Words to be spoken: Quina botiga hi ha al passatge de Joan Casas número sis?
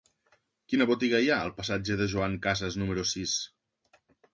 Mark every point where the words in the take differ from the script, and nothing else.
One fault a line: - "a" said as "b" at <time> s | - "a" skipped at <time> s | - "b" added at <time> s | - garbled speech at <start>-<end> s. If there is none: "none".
none